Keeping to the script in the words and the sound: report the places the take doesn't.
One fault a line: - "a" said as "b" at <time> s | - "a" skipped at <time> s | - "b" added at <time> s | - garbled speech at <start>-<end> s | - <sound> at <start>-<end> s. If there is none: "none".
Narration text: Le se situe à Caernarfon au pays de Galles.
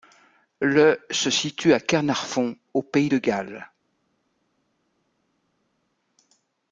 none